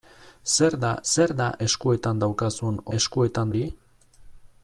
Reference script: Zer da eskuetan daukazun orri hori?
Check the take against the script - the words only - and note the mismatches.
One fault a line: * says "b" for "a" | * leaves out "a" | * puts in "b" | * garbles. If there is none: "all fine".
* puts in "zer da"
* says "eskuetan" for "orri"